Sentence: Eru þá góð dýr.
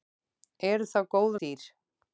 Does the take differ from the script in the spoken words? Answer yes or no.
no